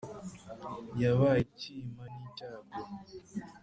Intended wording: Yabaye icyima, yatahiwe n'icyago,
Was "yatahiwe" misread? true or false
true